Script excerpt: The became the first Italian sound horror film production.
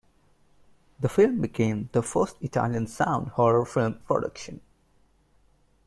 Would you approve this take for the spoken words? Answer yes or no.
no